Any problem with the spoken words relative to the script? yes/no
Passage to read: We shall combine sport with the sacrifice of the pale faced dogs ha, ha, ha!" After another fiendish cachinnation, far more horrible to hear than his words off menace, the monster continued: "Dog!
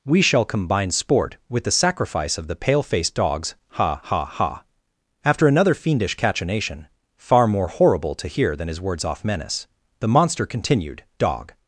no